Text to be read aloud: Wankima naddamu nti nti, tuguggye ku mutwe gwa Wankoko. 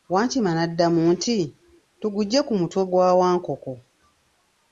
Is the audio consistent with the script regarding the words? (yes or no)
no